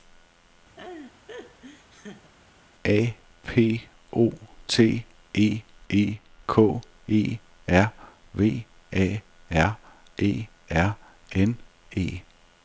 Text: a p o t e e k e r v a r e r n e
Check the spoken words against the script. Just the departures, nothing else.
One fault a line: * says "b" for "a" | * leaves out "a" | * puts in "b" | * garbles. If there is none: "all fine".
all fine